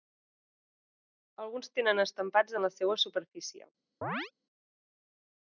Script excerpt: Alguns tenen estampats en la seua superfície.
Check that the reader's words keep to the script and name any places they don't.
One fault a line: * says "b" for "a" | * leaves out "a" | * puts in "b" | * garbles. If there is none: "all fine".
all fine